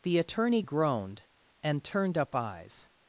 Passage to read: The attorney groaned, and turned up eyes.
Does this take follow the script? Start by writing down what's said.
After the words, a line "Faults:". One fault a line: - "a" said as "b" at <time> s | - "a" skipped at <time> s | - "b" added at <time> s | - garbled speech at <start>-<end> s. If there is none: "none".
The attorney groaned, and turned up eyes.
Faults:
none